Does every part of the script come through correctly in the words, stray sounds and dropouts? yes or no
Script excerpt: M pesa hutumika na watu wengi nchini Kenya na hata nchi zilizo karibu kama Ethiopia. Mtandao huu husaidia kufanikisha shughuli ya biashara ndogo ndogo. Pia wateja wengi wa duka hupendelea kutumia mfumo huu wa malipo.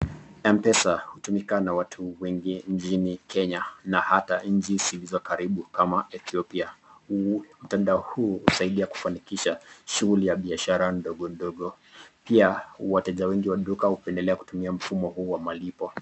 yes